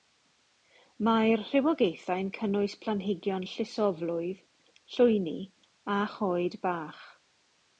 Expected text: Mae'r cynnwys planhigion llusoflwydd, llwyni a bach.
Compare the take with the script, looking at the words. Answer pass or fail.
fail